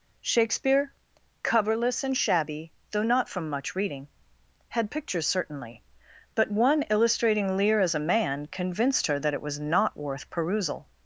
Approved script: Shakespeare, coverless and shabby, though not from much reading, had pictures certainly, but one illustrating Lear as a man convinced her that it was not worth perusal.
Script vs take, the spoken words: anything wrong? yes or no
no